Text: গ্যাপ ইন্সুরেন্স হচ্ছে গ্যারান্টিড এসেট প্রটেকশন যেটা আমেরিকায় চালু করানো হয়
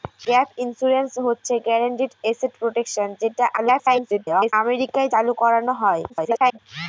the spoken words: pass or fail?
fail